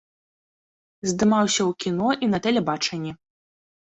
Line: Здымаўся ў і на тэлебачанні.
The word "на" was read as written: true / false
true